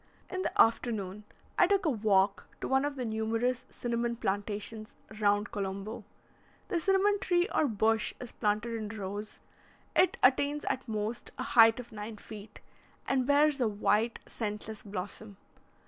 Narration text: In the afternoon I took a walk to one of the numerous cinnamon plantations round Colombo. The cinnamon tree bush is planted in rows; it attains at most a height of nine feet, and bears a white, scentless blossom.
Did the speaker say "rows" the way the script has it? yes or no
yes